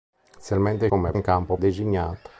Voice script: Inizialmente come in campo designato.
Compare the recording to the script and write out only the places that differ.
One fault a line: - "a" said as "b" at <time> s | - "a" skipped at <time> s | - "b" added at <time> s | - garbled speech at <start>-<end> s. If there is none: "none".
none